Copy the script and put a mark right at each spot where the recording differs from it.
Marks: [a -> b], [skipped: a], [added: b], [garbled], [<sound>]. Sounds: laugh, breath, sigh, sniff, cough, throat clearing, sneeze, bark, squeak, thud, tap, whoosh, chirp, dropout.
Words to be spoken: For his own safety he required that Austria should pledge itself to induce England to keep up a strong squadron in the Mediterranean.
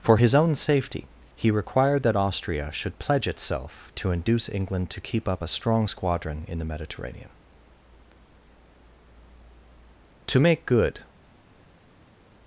For his own safety he required that Austria should pledge itself to induce England to keep up a strong squadron in the Mediterranean. [added: To make good]